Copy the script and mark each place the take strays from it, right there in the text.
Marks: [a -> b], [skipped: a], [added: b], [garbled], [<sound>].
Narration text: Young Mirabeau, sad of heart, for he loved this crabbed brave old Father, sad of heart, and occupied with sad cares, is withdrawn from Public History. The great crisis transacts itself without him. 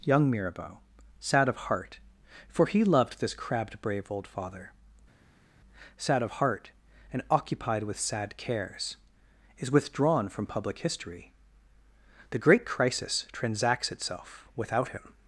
Young Mirabeau, sad of heart, for he loved this crabbed brave old Father, sad of heart, and occupied with sad cares, is withdrawn from Public History. The great crisis transacts itself without him.